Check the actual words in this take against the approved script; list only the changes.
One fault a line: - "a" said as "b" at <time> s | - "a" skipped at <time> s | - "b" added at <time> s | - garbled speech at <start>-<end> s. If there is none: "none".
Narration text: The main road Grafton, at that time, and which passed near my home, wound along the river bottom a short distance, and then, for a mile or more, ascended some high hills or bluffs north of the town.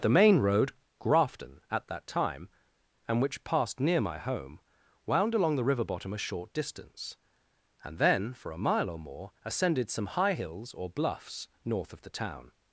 none